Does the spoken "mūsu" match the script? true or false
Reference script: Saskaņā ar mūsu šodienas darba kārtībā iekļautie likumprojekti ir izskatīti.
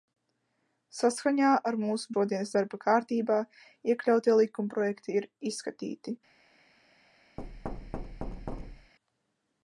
true